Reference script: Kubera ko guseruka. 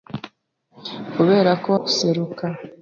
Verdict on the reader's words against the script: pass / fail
pass